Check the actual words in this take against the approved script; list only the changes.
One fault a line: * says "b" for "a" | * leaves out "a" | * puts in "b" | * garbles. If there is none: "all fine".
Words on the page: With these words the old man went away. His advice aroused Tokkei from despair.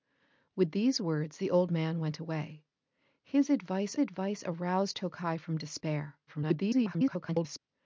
* puts in "advice"
* garbles